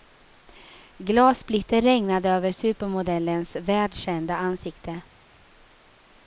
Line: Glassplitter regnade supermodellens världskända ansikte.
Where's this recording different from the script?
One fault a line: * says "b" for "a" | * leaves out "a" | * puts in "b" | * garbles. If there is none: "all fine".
* puts in "över"